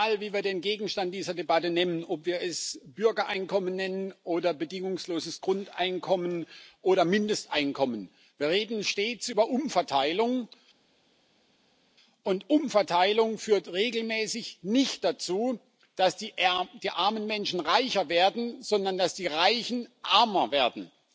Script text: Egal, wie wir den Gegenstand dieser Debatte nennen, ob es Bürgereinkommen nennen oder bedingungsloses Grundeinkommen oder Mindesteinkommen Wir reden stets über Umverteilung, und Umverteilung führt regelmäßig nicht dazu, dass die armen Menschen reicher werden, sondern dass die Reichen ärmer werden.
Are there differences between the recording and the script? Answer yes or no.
yes